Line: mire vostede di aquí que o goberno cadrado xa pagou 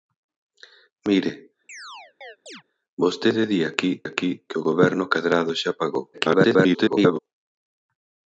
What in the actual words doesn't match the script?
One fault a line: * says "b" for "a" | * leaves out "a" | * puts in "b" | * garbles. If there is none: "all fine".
* puts in "aquí"
* garbles